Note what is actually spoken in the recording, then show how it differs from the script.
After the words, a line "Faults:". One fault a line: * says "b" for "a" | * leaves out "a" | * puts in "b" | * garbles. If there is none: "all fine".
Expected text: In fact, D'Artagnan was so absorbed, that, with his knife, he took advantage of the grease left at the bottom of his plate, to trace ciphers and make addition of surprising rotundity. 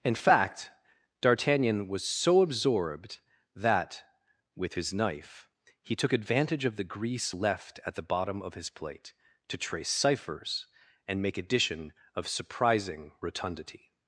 In fact, D'Artagnan was so absorbed, that, with his knife, he took advantage of the grease left at the bottom of his plate, to trace ciphers and make addition of surprising rotundity.
Faults:
all fine